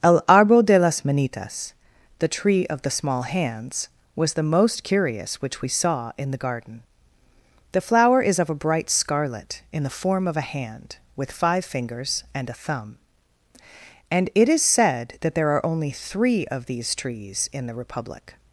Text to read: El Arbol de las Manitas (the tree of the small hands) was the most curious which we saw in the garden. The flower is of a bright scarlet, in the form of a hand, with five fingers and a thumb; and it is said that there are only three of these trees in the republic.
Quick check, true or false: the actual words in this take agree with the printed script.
true